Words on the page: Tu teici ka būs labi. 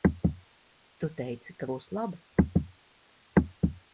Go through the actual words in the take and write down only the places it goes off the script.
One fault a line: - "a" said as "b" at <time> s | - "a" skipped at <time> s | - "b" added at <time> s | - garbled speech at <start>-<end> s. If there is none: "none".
none